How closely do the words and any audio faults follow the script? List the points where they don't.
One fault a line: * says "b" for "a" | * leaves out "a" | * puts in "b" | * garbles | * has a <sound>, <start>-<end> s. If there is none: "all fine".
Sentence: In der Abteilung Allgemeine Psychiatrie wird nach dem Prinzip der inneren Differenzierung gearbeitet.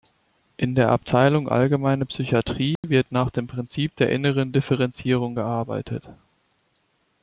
* has a dropout, 2.8-2.8 s